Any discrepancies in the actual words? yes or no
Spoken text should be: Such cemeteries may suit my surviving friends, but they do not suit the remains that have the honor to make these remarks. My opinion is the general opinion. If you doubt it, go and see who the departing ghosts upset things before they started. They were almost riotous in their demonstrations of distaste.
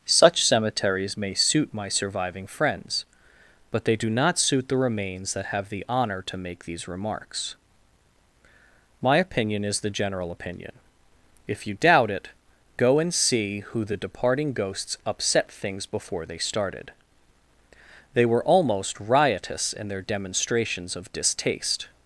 no